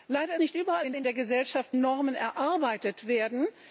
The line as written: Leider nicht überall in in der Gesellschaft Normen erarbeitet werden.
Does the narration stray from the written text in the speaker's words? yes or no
no